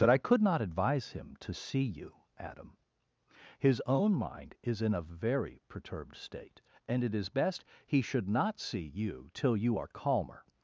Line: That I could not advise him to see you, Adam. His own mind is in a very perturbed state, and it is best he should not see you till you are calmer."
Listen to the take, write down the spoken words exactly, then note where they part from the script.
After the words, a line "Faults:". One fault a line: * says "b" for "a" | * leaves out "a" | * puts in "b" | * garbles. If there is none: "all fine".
That I could not advise him to see you, Adam. His own mind is in a very perturbed state, and it is best he should not see you till you are calmer."
Faults:
all fine